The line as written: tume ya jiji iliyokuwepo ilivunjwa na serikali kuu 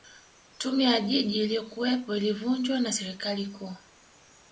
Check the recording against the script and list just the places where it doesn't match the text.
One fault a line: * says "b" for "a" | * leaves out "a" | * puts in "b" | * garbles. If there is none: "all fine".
all fine